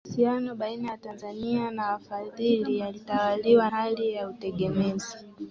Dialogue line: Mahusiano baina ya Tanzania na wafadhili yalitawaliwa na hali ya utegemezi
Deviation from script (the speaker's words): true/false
true